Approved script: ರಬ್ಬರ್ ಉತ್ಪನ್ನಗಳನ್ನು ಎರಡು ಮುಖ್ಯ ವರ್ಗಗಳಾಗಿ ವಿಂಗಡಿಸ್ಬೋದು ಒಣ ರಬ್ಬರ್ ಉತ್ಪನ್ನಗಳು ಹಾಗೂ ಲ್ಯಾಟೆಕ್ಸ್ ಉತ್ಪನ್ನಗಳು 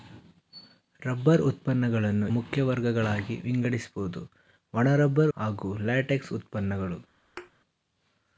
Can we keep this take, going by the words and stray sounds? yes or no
no